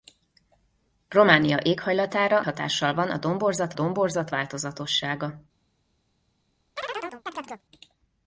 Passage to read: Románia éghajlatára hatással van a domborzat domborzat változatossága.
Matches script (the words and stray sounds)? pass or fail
fail